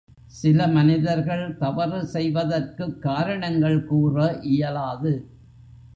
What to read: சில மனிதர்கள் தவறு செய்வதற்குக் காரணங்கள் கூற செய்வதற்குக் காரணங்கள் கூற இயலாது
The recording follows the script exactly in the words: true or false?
false